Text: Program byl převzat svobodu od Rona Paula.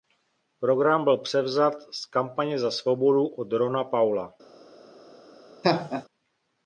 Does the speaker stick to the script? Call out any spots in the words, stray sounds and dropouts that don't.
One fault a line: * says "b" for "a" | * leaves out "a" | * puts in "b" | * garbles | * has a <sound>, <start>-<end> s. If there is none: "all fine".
* puts in "z Kampaně za"
* has a laugh, 5.6-6.1 s